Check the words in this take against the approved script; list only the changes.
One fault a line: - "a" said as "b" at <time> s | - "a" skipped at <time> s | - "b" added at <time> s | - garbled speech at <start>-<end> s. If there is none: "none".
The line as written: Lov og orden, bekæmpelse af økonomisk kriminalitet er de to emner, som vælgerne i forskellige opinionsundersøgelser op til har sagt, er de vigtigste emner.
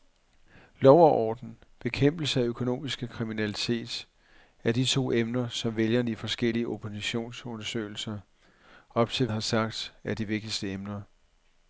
none